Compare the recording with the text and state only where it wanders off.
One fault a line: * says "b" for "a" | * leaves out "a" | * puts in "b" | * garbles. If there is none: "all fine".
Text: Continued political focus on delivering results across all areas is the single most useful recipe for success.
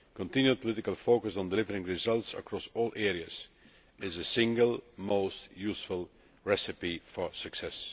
all fine